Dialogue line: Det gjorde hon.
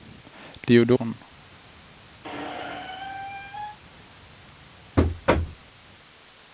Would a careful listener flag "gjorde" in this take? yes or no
no